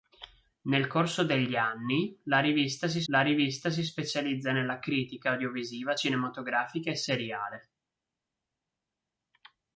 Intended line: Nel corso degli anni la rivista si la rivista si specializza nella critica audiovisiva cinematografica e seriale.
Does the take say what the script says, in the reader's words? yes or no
yes